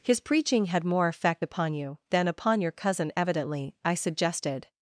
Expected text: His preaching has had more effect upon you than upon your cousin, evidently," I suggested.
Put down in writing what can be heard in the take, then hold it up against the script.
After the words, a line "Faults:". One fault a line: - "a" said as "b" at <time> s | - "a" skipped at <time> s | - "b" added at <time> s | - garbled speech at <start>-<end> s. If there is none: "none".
His preaching had more effect upon you than upon your cousin, evidently," I suggested.
Faults:
- "has" skipped at 0.7 s